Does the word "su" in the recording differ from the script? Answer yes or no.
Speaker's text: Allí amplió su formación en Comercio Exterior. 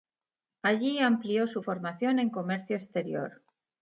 no